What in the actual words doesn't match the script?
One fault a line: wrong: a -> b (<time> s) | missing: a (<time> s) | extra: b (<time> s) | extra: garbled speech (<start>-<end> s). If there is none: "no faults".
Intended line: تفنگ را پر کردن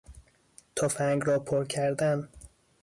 no faults